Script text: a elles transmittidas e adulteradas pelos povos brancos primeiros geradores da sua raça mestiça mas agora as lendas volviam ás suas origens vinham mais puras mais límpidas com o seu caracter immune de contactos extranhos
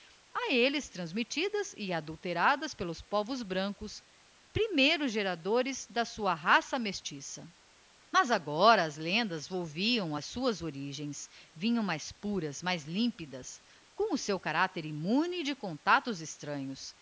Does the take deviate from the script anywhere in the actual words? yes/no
no